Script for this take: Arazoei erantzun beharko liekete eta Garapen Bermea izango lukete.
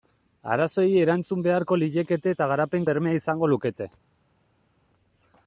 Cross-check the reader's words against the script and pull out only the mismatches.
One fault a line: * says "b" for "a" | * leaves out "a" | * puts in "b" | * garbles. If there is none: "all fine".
all fine